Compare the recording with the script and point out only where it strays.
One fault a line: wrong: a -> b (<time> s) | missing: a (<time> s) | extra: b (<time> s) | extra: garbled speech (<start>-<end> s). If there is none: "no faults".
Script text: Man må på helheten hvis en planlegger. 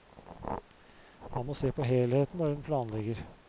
extra: se (1.5 s)
wrong: hvis -> når (2.4 s)